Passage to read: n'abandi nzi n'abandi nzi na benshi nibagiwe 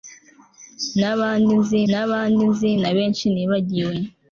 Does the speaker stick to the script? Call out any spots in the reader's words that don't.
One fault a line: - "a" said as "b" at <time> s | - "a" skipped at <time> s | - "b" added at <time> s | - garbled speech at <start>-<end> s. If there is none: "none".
none